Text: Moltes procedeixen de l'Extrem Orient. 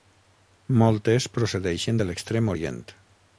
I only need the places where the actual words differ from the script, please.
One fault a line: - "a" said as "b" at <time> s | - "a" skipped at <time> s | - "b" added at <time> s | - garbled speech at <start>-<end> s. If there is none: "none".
none